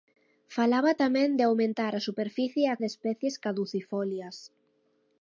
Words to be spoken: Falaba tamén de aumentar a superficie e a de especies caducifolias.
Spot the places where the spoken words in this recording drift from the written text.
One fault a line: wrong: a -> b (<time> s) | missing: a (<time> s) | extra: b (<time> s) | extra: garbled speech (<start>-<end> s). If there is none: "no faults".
no faults